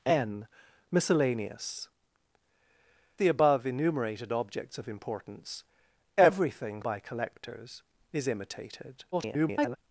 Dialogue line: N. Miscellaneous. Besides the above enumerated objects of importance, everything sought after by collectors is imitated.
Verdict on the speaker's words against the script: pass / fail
fail